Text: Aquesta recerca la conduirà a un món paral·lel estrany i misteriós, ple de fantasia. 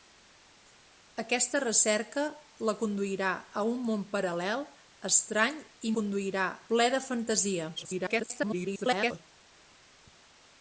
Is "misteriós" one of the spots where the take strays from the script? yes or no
yes